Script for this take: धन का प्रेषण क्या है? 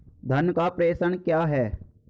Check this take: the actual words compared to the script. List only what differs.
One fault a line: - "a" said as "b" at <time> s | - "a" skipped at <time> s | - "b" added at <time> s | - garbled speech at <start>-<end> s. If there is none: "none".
none